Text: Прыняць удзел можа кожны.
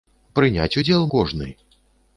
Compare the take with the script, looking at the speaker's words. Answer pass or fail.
fail